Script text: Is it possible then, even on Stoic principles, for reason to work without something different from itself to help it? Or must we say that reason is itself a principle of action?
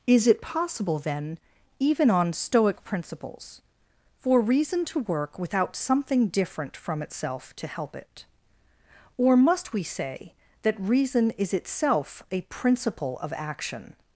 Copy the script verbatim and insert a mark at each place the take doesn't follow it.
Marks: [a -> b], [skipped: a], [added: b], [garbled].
Is it possible then, even on Stoic principles, for reason to work without something different from itself to help it? Or must we say that reason is itself a principle of action?